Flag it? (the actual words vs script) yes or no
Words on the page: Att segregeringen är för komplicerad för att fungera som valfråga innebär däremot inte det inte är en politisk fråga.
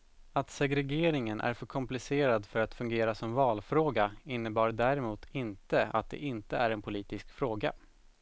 yes